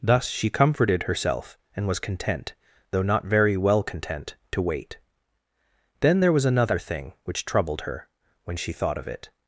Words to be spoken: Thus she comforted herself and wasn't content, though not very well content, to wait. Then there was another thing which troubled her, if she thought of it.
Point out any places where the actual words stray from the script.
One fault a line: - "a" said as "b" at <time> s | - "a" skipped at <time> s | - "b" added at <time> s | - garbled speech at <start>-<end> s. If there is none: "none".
- "wasn't" said as "was" at 1.9 s
- "if" said as "when" at 8.4 s